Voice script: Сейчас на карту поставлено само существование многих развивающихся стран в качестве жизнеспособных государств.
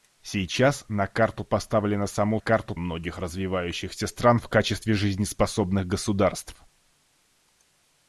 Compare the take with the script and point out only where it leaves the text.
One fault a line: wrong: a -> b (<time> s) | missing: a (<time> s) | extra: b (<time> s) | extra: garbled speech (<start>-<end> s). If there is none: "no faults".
wrong: существование -> карту (2.4 s)